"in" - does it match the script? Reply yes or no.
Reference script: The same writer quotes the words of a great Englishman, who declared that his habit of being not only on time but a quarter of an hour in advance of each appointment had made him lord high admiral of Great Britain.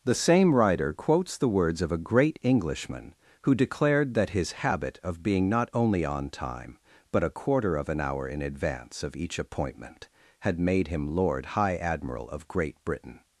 yes